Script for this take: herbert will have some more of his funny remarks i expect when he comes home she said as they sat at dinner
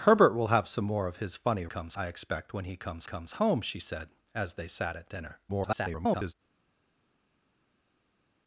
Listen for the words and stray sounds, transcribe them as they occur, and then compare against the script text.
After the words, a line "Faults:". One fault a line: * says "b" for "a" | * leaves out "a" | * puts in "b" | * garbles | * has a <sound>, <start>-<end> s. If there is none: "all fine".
herbert will have some more of his funny comes i expect when he comes comes home she said as they sat at dinner [garbled]
Faults:
* says "comes" for "remarks"
* puts in "comes"
* garbles